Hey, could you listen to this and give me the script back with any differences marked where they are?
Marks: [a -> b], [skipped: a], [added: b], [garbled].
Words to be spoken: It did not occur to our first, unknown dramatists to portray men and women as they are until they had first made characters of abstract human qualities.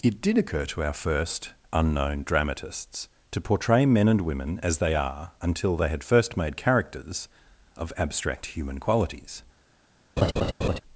It did [skipped: not] occur to our first, unknown dramatists to portray men and women as they are until they had first made characters of abstract human qualities.